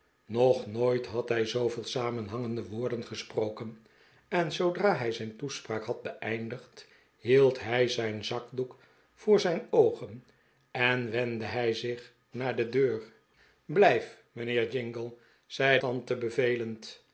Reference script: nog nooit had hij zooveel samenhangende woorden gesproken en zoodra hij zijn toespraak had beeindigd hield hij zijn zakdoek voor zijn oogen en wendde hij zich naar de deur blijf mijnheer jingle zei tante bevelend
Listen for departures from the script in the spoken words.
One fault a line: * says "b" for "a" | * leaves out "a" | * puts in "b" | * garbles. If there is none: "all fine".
all fine